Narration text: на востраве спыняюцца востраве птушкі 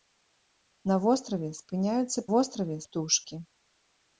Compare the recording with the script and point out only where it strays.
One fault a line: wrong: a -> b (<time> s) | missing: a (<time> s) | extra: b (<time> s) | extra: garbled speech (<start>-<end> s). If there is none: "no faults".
no faults